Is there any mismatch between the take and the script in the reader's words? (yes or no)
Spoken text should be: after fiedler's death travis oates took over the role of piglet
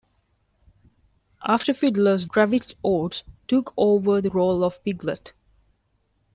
yes